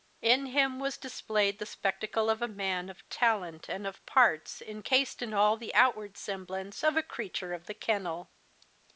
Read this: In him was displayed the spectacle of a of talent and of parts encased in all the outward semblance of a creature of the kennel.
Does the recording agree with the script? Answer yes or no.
no